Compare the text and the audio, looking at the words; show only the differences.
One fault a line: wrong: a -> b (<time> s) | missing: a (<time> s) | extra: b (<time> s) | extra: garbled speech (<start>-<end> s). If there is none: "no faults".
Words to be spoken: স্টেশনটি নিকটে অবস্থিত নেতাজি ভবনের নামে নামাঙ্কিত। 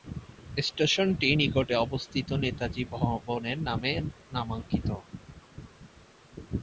no faults